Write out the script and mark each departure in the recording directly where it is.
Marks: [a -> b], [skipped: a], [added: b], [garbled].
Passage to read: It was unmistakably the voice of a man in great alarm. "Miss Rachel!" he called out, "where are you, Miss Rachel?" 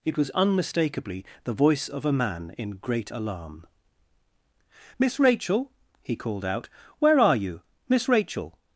It was unmistakably the voice of a man in great alarm. "Miss Rachel!" he called out, "where are you, Miss Rachel?"